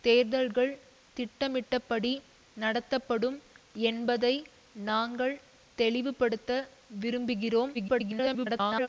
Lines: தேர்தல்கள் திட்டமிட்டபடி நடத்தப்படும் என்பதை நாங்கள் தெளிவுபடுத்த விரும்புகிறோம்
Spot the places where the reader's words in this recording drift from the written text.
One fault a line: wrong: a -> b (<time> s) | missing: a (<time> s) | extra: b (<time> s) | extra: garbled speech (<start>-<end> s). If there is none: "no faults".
extra: garbled speech (7.7-8.9 s)